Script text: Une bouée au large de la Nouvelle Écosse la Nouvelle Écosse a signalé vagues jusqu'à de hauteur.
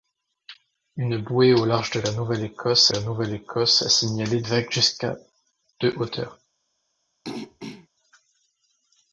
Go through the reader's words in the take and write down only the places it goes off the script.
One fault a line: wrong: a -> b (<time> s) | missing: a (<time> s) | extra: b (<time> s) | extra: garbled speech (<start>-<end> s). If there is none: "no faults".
no faults